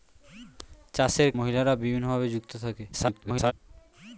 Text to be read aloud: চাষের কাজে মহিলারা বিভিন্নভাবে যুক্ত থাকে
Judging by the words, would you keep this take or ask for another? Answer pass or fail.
fail